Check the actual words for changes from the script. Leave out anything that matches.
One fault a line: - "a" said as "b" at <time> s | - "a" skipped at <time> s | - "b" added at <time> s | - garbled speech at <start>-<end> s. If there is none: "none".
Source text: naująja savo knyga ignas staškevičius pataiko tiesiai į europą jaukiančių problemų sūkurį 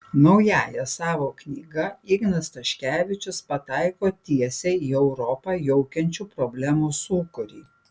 none